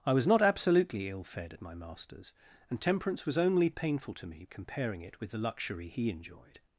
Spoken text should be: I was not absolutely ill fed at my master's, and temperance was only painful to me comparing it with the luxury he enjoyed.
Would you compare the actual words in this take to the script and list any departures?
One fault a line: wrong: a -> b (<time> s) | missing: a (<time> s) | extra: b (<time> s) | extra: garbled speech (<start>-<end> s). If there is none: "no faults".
no faults